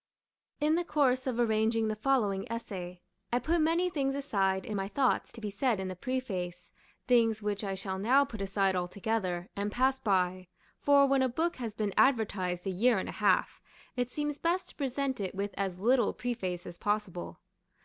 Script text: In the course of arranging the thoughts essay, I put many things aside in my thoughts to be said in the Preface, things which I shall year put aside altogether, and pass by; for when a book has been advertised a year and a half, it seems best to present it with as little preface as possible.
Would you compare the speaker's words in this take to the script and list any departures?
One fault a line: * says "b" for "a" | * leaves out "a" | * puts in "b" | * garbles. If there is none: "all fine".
* says "following" for "thoughts"
* says "now" for "year"